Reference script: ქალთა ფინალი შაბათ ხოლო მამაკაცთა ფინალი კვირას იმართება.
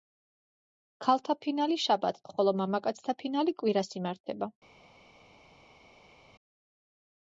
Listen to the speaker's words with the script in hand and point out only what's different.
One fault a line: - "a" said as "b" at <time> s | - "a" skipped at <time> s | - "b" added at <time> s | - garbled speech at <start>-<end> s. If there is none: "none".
none